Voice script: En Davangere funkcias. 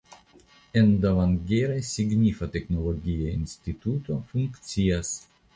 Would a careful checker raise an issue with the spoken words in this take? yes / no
yes